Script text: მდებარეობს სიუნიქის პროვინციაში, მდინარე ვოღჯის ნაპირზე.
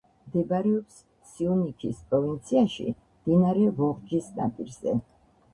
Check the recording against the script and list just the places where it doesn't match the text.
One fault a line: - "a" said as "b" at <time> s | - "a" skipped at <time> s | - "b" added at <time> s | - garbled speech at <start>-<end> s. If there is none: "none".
none